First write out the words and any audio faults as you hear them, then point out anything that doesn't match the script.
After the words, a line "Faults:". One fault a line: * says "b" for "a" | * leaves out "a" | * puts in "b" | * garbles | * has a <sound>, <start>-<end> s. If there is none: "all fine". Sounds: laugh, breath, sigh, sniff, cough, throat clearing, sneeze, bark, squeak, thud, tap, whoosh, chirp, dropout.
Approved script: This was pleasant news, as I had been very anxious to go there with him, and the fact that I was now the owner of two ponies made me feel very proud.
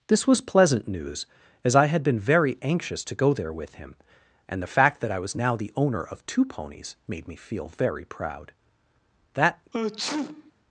This was pleasant news, as I had been very anxious to go there with him, and the fact that I was now the owner of two ponies made me feel very proud. That
Faults:
* puts in "That"
* has a sneeze, 9.7-10.5 s